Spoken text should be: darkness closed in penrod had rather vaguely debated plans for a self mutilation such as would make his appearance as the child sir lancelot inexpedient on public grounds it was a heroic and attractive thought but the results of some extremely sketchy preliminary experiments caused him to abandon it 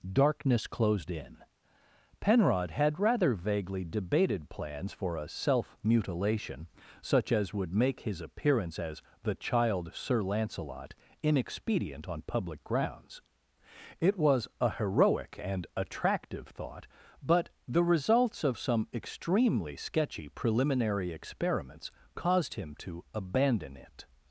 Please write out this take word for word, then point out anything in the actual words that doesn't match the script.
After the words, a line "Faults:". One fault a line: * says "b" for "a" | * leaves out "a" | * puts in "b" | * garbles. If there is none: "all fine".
darkness closed in penrod had rather vaguely debated plans for a self mutilation such as would make his appearance as the child sir lancelot inexpedient on public grounds it was a heroic and attractive thought but the results of some extremely sketchy preliminary experiments caused him to abandon it
Faults:
all fine